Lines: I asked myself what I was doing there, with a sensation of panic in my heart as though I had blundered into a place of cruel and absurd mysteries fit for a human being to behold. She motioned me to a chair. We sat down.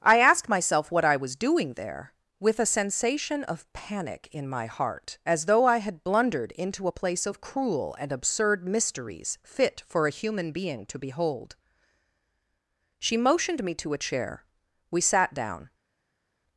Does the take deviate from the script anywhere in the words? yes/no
no